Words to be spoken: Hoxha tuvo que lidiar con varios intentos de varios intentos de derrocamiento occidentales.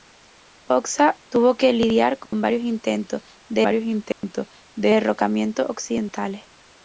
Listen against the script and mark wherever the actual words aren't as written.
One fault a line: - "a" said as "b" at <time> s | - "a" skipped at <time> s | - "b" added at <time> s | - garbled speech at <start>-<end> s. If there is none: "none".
none